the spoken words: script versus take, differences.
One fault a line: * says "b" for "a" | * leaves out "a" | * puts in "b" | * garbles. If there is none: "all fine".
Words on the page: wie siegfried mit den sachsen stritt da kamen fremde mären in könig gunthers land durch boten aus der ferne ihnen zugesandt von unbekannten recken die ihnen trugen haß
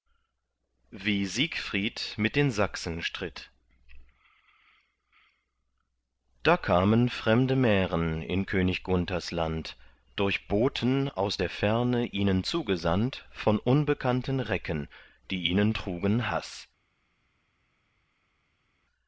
all fine